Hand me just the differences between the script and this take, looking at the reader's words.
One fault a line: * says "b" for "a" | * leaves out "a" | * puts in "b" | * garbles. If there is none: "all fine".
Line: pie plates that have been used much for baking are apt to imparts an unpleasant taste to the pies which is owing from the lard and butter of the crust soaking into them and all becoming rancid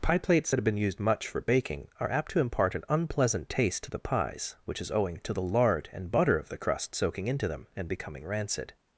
* says "impart" for "imparts"
* says "to" for "from"
* leaves out "all"